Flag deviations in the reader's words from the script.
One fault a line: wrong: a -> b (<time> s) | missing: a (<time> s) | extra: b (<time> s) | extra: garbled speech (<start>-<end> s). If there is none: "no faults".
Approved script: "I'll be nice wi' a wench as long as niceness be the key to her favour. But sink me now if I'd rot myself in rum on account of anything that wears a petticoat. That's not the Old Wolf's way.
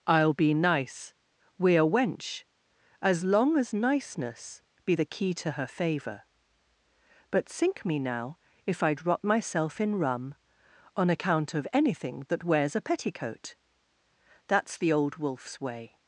missing: not (14.8 s)